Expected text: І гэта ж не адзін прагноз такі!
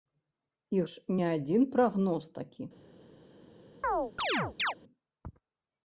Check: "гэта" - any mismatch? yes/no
yes